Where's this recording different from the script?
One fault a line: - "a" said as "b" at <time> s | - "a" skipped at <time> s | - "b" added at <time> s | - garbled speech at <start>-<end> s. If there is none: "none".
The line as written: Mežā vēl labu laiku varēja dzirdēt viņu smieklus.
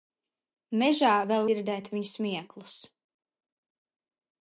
- "labu laiku varēja" skipped at 1.5 s